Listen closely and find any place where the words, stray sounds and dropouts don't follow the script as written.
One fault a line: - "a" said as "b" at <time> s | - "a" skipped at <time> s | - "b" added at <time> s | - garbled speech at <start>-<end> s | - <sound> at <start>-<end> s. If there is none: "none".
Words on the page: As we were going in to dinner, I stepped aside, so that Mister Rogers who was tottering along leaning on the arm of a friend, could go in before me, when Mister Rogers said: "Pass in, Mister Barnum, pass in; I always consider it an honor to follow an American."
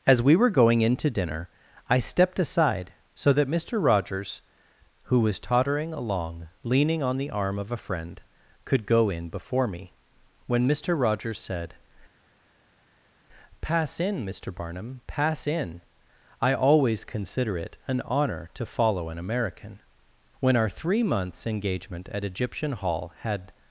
- "When our three months engagement at Egyptian Hall had" added at 20.4 s